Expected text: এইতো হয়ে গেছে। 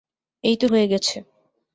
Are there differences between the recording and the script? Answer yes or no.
no